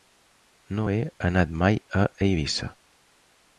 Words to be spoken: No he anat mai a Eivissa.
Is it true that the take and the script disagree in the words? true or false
false